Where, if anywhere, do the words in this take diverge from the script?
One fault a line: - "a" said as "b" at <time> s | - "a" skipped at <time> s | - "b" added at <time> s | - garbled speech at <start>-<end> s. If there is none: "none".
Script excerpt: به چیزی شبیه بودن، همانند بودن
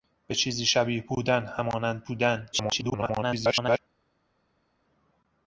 - garbled speech at 2.5-3.8 s